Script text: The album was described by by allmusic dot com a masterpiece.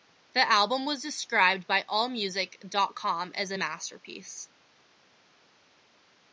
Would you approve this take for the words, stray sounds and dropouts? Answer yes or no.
no